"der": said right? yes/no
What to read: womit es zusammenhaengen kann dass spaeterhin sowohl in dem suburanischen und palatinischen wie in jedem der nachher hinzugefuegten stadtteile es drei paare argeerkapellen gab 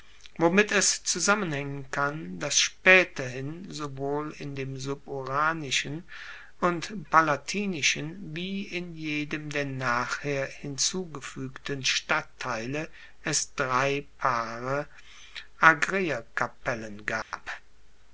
yes